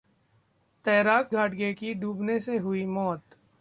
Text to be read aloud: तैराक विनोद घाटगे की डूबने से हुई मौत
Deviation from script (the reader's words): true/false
true